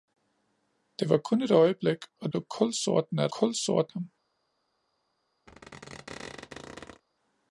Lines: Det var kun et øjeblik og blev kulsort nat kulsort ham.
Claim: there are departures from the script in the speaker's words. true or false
false